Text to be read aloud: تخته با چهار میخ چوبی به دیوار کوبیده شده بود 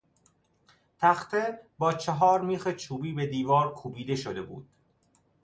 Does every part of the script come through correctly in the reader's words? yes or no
yes